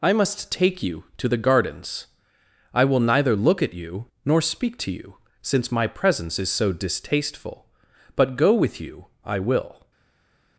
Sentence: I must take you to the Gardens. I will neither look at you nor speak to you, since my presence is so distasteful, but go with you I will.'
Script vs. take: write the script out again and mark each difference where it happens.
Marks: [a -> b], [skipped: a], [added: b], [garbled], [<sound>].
I must take you to the Gardens. I will neither look at you nor speak to you, since my presence is so distasteful, but go with you I will.'